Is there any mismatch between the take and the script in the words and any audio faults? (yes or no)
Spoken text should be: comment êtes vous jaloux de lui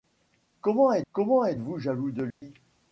yes